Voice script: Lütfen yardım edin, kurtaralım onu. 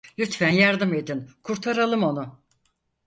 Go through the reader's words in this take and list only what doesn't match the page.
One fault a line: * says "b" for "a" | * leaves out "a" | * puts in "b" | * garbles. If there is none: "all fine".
all fine